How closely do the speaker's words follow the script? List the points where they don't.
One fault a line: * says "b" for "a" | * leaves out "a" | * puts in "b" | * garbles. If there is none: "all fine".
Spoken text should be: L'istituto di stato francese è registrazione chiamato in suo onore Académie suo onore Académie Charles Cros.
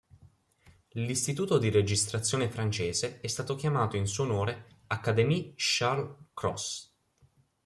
* says "registrazione" for "stato"
* says "stato" for "registrazione"
* leaves out "suo onore Académie"